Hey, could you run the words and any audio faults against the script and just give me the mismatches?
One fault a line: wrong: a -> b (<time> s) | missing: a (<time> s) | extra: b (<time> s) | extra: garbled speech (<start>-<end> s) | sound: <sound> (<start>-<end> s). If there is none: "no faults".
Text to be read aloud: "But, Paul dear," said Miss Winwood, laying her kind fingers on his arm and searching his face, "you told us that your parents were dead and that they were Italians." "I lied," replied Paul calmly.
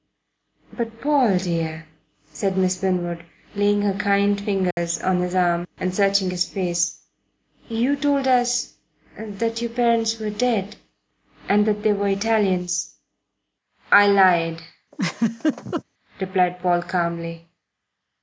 sound: dropout (4.7-4.8 s)
sound: laugh (14.9-15.8 s)